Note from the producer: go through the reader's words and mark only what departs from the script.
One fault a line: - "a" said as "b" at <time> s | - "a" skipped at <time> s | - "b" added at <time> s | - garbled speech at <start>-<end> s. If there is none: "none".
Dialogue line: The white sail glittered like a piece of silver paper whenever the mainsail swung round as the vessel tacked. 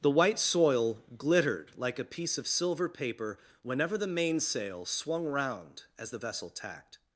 - "sail" said as "soil" at 0.4 s